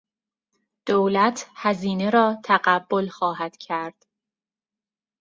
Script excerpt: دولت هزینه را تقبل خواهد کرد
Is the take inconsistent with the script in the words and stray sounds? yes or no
no